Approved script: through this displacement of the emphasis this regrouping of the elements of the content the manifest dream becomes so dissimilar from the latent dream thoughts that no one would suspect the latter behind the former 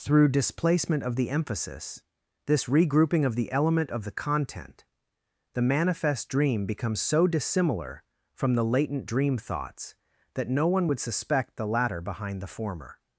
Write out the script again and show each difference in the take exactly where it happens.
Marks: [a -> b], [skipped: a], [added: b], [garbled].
through [skipped: this] displacement of the emphasis this regrouping of the [elements -> element] of the content the manifest dream becomes so dissimilar from the latent dream thoughts that no one would suspect the latter behind the former